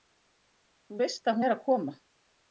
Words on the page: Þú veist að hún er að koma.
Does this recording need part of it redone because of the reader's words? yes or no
yes